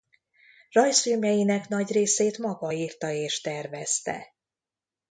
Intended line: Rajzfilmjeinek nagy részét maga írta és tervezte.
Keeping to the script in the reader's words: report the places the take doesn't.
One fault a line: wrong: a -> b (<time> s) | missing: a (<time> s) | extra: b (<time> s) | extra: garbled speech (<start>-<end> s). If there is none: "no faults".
no faults